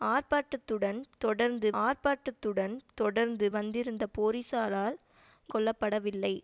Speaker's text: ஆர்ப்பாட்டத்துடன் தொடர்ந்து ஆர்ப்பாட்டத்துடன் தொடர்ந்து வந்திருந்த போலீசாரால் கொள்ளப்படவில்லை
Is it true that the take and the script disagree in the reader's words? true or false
false